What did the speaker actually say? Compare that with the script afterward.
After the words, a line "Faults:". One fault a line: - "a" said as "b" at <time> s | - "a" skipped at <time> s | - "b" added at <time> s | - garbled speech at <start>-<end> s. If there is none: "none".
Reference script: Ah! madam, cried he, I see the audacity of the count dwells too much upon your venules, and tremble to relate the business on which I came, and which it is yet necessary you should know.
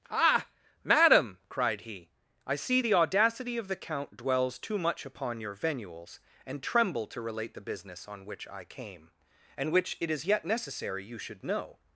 Ah! madam, cried he, I see the audacity of the count dwells too much upon your venules, and tremble to relate the business on which I came, and which it is yet necessary you should know.
Faults:
none